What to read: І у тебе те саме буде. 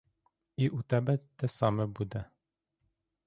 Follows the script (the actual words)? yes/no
yes